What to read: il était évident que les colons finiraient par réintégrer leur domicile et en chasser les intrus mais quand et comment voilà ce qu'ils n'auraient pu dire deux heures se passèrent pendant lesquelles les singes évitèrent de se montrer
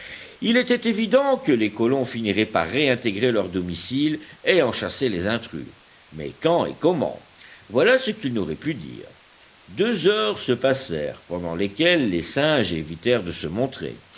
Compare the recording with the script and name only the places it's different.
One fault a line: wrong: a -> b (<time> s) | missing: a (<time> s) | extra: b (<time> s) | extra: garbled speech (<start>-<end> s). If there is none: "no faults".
no faults